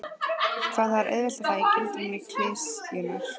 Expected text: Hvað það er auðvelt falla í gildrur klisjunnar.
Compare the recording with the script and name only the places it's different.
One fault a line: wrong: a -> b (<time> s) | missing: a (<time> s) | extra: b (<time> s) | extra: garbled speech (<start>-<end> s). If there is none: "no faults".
no faults